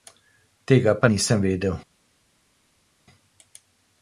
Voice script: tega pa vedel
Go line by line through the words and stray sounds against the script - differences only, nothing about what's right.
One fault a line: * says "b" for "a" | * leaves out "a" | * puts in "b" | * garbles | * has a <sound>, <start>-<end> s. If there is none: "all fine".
* puts in "nisem"